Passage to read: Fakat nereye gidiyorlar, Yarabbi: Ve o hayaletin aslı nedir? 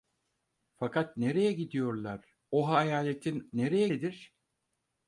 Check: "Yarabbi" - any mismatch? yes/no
yes